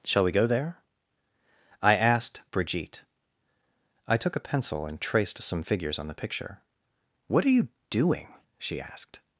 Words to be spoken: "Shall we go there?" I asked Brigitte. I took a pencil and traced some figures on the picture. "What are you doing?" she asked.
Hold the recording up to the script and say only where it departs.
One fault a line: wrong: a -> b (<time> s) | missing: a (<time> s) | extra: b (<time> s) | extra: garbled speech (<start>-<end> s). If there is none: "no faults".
no faults